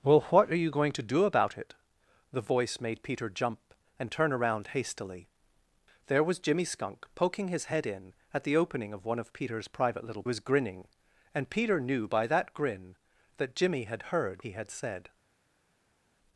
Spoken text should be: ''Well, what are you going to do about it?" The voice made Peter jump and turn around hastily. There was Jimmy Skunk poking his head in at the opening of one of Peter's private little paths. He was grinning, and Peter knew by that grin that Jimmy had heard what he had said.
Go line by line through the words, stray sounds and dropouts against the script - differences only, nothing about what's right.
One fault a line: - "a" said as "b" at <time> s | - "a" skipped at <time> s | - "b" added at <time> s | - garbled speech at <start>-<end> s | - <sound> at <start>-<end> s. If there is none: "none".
- "paths He" skipped at 10.2 s
- "what" skipped at 14.4 s